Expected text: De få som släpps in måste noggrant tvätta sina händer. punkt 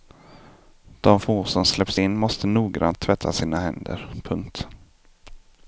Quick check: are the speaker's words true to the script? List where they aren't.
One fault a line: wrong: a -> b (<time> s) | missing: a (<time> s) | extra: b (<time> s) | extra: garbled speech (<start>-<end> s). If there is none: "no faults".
no faults